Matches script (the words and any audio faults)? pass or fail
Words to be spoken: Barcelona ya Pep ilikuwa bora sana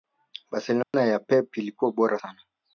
fail